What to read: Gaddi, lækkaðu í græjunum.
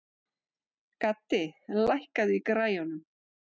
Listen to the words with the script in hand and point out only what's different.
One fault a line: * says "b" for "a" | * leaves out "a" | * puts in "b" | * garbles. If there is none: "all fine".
all fine